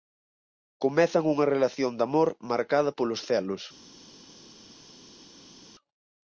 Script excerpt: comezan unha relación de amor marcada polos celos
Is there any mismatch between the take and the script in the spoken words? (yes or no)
no